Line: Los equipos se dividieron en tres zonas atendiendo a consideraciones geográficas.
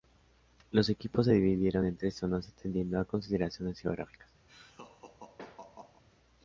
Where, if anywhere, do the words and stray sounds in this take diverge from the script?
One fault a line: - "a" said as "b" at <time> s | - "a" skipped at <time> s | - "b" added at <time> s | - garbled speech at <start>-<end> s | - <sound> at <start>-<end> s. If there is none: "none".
- laugh at 4.5-6.0 s